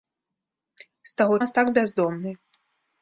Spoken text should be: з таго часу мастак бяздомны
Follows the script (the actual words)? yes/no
no